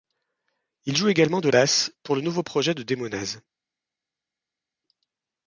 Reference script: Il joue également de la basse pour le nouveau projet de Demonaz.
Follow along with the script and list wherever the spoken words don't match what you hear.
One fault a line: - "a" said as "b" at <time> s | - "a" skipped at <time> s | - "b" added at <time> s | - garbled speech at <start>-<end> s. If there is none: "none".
- "la" skipped at 1.5 s